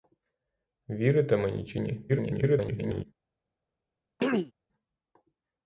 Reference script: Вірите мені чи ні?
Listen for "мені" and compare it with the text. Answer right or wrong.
right